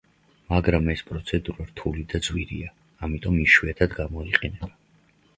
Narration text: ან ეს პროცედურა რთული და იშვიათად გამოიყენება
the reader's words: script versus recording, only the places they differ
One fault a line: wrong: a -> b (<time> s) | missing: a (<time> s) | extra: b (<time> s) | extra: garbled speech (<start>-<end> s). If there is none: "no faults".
wrong: ან -> მაგრამ (0.5 s)
extra: ძვირია ამიტომ (2.3 s)